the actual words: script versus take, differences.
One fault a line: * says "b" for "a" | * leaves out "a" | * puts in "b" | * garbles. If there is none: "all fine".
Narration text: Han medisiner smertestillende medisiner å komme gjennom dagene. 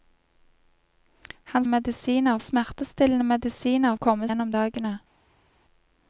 all fine